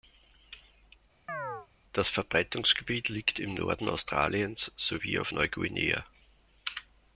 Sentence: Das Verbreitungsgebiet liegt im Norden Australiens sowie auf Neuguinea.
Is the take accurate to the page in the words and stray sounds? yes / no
no